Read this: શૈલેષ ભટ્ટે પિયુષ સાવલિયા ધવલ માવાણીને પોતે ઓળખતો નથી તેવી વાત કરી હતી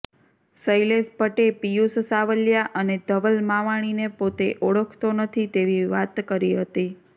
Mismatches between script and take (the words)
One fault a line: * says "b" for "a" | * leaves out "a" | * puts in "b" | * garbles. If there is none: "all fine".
* puts in "અને"